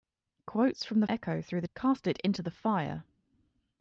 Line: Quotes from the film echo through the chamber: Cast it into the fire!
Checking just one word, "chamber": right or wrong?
wrong